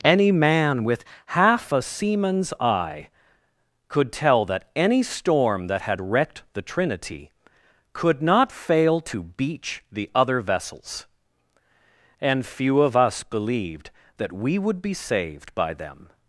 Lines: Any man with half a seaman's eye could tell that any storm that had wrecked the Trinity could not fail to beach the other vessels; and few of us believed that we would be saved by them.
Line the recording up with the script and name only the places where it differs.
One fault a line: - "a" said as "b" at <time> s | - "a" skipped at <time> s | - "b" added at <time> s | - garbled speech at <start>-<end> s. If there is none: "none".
none